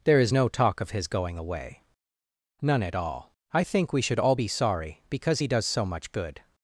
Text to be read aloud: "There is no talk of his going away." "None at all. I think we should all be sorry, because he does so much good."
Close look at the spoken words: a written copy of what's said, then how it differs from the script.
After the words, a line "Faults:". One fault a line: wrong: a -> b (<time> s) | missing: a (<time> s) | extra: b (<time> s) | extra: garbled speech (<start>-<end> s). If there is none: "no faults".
"There is no talk of his going away." "None at all. I think we should all be sorry, because he does so much good."
Faults:
no faults